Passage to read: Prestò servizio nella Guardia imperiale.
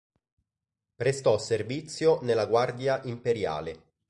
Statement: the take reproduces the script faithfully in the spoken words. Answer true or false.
true